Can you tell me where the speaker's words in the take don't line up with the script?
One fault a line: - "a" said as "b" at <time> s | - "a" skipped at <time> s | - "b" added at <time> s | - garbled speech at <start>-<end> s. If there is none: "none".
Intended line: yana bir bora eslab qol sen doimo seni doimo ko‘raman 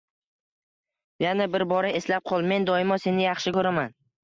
- "sen" said as "men" at 2.5 s
- "doimo" said as "yaxshi" at 3.3 s